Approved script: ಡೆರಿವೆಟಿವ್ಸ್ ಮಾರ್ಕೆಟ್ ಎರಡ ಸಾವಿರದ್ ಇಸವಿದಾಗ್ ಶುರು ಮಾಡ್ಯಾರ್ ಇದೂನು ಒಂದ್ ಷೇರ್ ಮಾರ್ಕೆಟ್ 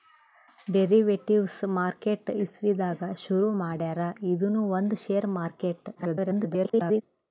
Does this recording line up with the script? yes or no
no